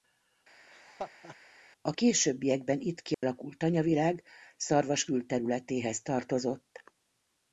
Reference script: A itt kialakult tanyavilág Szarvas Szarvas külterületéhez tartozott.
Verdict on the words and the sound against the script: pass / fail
fail